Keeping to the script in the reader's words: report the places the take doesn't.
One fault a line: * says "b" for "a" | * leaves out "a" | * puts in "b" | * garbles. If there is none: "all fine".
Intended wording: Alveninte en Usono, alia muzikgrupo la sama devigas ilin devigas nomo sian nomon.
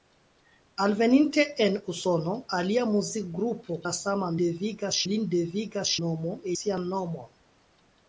all fine